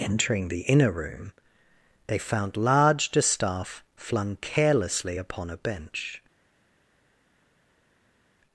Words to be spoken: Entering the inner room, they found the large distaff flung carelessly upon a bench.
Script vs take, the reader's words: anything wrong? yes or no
yes